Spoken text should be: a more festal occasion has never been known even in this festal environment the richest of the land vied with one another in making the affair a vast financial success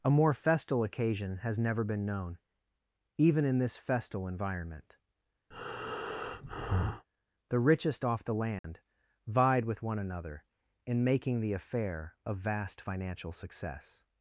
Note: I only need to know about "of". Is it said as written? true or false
false